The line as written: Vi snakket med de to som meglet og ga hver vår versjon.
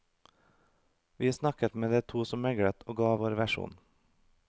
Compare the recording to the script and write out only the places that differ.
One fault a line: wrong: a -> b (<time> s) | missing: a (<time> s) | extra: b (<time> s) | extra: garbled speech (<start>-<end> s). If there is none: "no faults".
missing: hver (3.1 s)